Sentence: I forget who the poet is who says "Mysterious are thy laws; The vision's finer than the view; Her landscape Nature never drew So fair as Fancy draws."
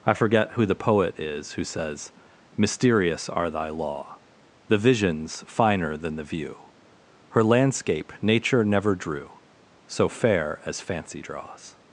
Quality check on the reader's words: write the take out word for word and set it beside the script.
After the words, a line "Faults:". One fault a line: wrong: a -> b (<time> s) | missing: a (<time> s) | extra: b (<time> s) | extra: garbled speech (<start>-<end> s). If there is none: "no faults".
I forget who the poet is who says "Mysterious are thy law; The vision's finer than the view; Her landscape Nature never drew So fair as Fancy draws."
Faults:
wrong: laws -> law (3.7 s)